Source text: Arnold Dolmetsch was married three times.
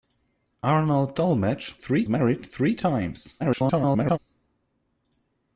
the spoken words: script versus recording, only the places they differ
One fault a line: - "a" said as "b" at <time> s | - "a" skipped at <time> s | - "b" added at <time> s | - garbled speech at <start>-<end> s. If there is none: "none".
- "was" said as "three" at 1.7 s
- garbled speech at 3.4-4.2 s